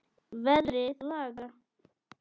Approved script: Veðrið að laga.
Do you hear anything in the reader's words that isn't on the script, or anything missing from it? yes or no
no